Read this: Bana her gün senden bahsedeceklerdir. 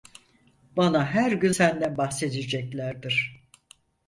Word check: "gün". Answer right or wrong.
right